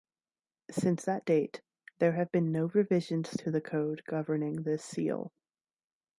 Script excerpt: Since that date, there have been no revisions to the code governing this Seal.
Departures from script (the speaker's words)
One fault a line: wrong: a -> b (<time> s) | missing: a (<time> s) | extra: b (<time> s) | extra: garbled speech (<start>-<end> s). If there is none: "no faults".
no faults